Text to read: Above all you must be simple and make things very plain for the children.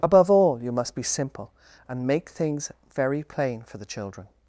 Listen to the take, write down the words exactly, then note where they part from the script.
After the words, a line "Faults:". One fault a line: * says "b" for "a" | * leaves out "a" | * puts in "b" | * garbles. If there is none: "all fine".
Above all you must be simple and make things very plain for the children.
Faults:
all fine